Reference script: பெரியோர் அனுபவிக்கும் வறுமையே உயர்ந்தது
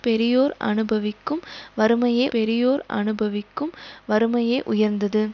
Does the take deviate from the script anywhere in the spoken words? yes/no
yes